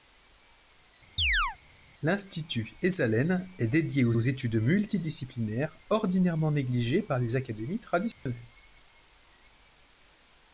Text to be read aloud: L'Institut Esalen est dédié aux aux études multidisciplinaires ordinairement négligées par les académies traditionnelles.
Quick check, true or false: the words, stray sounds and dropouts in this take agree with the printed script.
false